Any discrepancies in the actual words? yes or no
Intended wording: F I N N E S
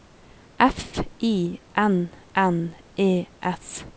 no